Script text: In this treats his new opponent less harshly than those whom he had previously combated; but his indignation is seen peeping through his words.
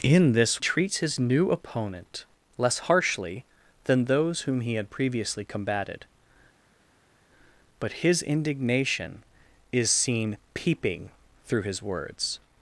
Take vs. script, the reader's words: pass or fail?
pass